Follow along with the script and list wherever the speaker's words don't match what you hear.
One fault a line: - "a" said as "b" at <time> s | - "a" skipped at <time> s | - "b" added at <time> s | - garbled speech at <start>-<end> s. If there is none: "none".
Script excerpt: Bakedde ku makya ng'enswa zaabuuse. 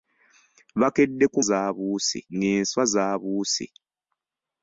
- "makya" said as "zaabuuse" at 1.5 s